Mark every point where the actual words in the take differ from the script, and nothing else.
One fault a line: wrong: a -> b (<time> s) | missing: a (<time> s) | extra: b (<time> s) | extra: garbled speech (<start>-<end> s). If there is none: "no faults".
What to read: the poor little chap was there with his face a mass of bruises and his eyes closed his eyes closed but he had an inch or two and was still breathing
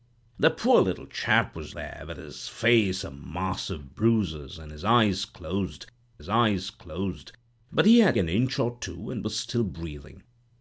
no faults